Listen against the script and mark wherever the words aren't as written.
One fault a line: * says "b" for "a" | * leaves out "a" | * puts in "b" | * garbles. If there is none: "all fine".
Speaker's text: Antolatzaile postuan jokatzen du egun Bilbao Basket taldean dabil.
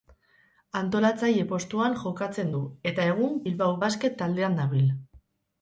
* puts in "eta"